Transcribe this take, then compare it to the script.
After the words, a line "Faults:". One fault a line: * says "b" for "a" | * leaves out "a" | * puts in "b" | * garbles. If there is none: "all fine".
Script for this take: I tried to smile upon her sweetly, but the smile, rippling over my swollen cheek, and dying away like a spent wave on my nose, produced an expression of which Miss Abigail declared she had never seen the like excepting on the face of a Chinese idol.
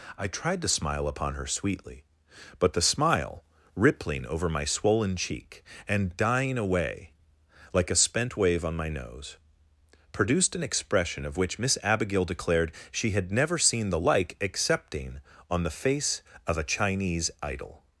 I tried to smile upon her sweetly, but the smile, rippling over my swollen cheek, and dying away like a spent wave on my nose, produced an expression of which Miss Abigail declared she had never seen the like excepting on the face of a Chinese idol.
Faults:
all fine